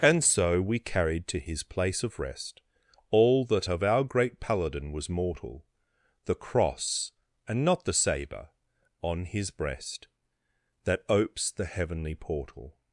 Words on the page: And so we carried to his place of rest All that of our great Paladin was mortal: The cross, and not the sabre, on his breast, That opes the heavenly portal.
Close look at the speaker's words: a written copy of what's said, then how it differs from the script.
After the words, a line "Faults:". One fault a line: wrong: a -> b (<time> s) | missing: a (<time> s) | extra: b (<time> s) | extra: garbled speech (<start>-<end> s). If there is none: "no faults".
And so we carried to his place of rest All that of our great Paladin was mortal: The cross, and not the sabre, on his breast, That opes the heavenly portal.
Faults:
no faults